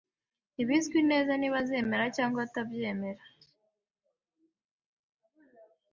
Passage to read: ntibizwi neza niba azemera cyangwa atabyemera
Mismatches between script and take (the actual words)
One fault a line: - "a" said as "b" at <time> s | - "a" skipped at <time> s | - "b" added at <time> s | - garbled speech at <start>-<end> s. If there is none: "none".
none